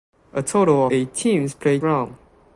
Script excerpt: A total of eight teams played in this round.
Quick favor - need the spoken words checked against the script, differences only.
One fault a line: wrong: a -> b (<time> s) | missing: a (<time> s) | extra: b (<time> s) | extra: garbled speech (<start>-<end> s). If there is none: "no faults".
missing: of (0.9 s)
missing: in this (1.8 s)